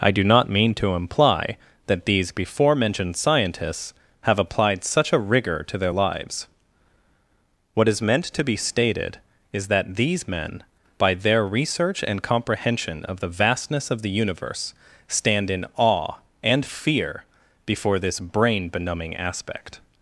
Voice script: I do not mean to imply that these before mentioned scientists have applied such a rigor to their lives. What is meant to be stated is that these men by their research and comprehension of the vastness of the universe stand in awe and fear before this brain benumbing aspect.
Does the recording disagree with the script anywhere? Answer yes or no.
no